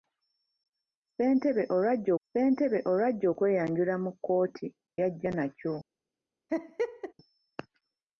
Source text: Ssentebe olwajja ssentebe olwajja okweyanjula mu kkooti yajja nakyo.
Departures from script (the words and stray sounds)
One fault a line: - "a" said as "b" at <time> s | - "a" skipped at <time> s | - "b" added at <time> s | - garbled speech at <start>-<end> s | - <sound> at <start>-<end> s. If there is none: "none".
- laugh at 6.5-7.1 s